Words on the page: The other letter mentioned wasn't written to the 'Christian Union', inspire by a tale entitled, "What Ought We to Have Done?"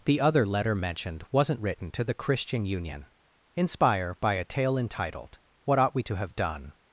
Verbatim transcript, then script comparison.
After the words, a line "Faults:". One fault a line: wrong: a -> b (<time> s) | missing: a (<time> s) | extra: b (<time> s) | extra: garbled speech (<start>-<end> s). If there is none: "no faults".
The other letter mentioned wasn't written to the 'Christian Union', inspire by a tale entitled, "What Ought We to Have Done?"
Faults:
no faults